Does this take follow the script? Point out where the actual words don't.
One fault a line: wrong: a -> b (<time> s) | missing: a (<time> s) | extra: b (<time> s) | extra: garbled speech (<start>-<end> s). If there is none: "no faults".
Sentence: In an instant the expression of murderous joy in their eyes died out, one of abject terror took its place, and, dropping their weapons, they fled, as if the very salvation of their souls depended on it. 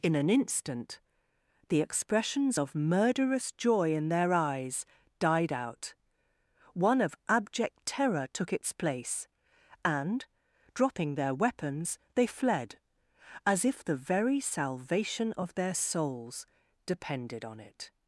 wrong: expression -> expressions (1.8 s)